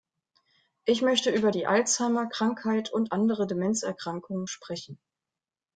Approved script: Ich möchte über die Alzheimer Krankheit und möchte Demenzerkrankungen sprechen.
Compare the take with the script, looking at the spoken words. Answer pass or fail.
fail